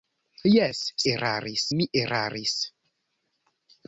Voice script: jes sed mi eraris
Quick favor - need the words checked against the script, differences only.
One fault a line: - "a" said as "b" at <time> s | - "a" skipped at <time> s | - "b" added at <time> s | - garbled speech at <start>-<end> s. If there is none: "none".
- "sed" said as "eraris" at 1.1 s